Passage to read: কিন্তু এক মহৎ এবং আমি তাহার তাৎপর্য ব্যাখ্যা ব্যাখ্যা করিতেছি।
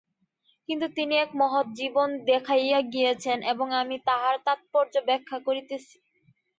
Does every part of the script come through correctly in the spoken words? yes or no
no